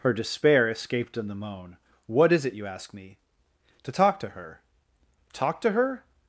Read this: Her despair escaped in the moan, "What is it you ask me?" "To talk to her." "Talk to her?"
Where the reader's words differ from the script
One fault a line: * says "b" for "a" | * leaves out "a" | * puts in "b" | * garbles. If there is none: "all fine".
all fine